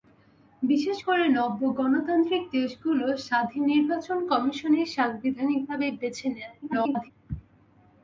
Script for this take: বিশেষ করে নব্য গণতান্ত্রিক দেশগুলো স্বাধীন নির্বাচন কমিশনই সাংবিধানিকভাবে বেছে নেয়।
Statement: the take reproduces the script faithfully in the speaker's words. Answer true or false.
false